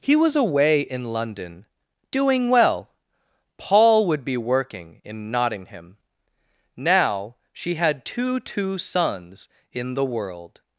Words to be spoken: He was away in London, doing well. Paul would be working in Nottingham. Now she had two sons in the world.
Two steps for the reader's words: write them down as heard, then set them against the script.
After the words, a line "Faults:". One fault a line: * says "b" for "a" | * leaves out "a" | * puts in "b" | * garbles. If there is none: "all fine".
He was away in London, doing well. Paul would be working in Nottingham. Now she had two two sons in the world.
Faults:
* puts in "two"